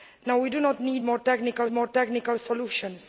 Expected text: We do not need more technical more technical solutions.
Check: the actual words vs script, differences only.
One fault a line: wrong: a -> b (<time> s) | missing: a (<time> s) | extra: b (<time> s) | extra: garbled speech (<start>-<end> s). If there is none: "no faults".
no faults